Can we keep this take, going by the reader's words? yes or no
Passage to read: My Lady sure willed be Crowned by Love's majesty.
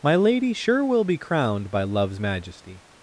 no